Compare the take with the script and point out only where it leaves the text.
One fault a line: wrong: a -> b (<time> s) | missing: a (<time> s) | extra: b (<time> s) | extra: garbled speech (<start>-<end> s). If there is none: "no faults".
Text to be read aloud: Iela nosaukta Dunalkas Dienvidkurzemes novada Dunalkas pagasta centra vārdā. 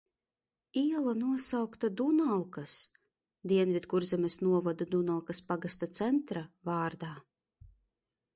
no faults